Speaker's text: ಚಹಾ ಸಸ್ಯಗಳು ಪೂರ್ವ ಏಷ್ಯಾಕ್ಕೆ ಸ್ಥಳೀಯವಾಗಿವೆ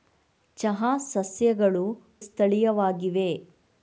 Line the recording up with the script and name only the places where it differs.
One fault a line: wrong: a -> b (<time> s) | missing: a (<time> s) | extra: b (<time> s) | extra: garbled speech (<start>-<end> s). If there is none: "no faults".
missing: ಪೂರ್ವ ಏಷ್ಯಾಕ್ಕೆ (1.8 s)